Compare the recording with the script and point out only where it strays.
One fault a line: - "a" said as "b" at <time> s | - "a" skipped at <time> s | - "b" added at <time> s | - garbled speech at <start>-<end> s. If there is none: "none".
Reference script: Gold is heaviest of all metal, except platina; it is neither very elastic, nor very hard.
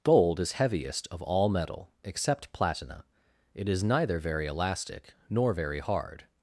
none